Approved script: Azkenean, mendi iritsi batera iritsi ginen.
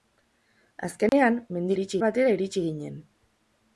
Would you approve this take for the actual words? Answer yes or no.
yes